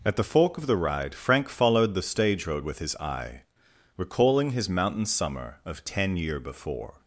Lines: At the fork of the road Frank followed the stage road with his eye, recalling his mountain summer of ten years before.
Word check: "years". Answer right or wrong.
wrong